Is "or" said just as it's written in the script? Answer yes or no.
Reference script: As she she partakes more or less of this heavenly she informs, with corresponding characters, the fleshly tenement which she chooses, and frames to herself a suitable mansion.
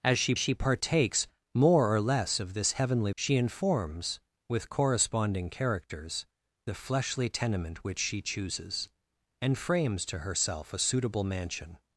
yes